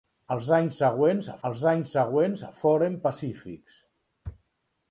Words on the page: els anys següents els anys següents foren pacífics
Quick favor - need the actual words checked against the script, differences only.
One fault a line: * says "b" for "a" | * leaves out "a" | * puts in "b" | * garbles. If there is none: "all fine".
all fine